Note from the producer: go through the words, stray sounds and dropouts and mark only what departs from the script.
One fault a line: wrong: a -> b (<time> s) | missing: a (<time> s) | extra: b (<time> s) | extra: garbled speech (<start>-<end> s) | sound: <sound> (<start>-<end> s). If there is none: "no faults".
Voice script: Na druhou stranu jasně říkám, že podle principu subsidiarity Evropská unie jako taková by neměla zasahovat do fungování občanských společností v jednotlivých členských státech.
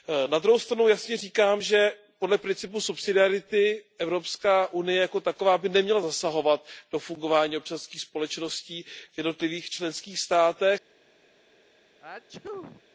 sound: sneeze (12.0-12.8 s)